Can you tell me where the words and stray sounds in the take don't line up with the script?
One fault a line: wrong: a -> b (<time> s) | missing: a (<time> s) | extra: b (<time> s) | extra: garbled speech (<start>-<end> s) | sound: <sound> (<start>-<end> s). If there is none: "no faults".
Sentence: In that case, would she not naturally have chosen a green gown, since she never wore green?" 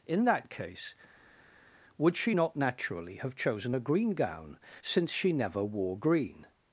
no faults